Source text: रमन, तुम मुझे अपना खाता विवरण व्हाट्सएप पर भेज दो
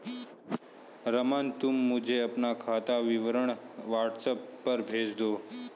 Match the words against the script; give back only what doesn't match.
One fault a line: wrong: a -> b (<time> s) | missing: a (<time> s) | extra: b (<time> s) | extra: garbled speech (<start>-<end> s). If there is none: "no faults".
no faults